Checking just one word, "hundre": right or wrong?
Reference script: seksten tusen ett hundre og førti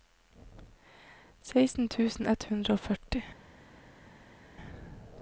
right